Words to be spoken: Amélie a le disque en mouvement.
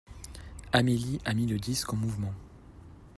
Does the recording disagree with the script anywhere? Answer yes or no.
yes